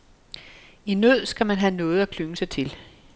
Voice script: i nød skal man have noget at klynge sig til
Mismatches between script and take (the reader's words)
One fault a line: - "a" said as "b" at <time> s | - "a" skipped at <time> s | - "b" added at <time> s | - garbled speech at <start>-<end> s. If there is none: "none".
none